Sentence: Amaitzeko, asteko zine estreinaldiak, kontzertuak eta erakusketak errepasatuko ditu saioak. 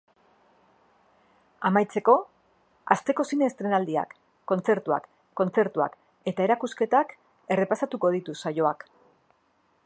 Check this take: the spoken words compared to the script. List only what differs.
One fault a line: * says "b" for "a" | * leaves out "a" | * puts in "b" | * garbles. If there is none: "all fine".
* puts in "kontzertuak"